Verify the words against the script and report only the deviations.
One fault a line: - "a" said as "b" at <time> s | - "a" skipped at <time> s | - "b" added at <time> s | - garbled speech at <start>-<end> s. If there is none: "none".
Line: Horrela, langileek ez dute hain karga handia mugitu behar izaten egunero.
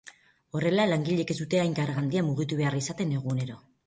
none